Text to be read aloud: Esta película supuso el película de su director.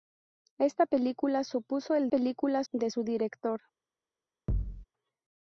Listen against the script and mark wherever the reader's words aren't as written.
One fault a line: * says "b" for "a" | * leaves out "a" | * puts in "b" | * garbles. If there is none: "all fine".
all fine